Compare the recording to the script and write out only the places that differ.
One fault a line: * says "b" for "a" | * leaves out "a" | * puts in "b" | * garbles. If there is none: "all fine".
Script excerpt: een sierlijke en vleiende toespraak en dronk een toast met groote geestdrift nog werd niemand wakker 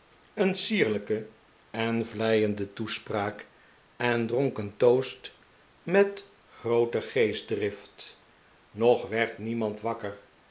all fine